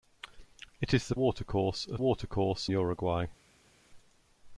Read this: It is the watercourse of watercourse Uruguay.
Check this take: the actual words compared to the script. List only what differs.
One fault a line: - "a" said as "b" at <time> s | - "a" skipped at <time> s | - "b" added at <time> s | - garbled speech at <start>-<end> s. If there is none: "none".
none